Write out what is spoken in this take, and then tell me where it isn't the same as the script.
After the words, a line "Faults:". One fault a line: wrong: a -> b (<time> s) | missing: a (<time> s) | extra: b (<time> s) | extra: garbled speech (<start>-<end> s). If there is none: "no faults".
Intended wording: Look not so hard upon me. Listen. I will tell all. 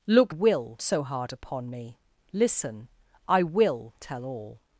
Look will so hard upon me. Listen. I will tell all.
Faults:
wrong: not -> will (0.3 s)